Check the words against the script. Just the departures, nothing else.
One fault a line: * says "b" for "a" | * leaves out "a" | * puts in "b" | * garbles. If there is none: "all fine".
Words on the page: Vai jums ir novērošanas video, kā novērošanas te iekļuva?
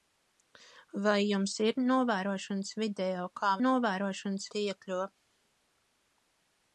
all fine